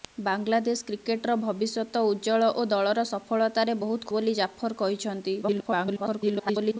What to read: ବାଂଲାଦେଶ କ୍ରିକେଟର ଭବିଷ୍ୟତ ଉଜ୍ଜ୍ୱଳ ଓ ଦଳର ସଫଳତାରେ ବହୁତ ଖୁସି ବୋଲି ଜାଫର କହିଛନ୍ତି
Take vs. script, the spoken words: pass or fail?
fail